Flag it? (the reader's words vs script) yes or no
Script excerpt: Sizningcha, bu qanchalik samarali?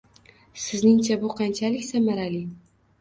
no